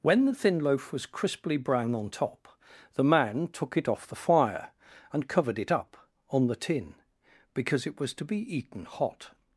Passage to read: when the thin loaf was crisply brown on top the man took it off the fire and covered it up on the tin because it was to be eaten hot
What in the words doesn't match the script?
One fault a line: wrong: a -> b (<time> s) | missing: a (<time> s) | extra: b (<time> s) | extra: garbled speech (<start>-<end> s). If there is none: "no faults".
no faults